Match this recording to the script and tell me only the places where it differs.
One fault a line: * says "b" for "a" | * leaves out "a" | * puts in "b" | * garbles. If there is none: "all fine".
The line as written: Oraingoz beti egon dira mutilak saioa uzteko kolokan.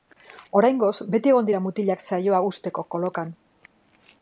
all fine